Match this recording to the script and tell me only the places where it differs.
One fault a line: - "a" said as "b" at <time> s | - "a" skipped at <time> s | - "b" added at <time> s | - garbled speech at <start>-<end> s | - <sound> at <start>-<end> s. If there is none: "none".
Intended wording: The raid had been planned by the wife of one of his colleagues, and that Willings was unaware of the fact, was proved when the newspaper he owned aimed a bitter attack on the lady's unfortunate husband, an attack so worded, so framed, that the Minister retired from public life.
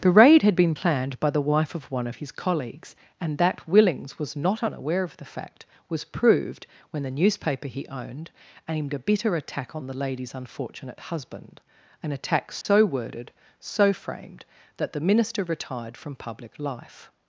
- "not" added at 4.4 s
- dropout at 12.6-12.6 s